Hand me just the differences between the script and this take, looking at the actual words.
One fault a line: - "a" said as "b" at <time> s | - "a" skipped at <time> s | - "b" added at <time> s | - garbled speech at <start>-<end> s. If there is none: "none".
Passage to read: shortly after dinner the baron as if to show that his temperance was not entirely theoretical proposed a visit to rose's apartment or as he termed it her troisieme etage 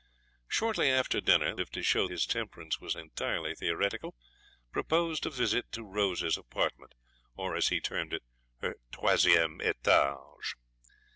- "the baron as" skipped at 1.6 s
- "that" skipped at 2.1 s
- "not" skipped at 3.0 s